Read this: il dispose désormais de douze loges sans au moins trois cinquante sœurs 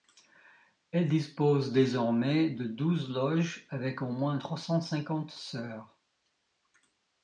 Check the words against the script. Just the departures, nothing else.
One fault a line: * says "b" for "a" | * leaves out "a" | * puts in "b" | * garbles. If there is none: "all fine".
* says "elle" for "il"
* says "avec" for "sans"
* puts in "cent"